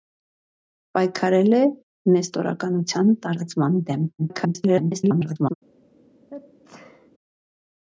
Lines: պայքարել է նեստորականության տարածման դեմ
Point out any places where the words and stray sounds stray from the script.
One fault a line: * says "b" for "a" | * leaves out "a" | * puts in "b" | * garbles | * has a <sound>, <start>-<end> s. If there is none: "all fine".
* garbles
* has a sneeze, 6.3-7.1 s